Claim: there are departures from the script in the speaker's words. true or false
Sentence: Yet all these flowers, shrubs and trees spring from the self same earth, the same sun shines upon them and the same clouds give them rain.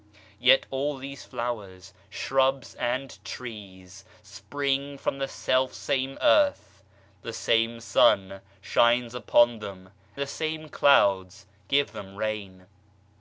true